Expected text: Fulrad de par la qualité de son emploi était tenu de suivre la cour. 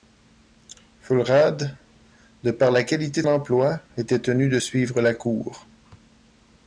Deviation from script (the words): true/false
true